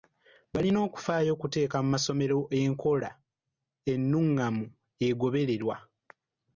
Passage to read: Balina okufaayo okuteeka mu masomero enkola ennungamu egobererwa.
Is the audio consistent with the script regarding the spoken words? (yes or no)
yes